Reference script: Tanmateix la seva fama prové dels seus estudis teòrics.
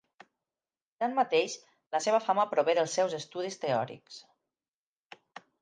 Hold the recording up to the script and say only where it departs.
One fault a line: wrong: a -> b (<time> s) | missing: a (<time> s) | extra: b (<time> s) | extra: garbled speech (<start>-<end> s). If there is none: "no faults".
no faults